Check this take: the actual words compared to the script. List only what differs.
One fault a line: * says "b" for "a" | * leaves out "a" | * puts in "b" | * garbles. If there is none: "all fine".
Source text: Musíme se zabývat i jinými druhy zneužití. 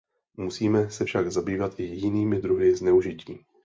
* puts in "však"